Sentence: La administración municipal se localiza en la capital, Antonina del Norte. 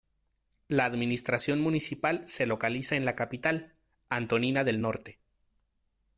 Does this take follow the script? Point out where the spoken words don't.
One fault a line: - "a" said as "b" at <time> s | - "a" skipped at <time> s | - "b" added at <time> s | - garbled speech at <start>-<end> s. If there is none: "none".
none